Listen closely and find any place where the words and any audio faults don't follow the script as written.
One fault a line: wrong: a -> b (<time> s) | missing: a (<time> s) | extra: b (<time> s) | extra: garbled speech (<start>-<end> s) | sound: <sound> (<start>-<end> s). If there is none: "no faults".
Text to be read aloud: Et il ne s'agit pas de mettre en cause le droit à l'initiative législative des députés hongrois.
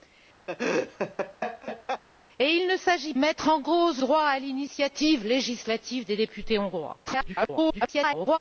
sound: laugh (0.5-2.0 s)
missing: pas de (3.1 s)
missing: le (4.0 s)
extra: garbled speech (7.0-8.4 s)